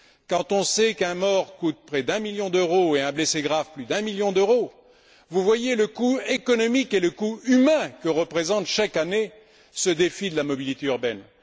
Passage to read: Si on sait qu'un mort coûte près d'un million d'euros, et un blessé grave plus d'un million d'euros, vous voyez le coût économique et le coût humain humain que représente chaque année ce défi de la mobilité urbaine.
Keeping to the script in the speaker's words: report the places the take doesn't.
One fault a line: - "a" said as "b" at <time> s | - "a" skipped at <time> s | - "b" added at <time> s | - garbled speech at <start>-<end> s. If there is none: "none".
- "Si" said as "Quand" at 0.3 s
- "humain" skipped at 7.9 s